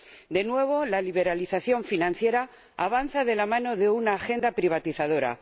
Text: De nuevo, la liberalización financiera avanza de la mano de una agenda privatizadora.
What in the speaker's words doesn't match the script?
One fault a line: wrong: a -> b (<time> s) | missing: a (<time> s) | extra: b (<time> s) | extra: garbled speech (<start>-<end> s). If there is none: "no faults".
no faults